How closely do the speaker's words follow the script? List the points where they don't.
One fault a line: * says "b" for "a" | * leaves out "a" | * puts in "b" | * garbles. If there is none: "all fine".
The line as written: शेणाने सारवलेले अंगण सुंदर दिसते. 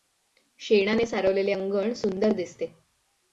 all fine